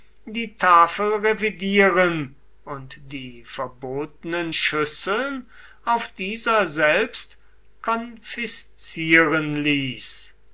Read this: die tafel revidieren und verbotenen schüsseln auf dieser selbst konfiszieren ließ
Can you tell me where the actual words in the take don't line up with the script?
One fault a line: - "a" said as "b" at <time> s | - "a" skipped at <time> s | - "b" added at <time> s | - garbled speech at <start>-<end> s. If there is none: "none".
- "die" added at 3.1 s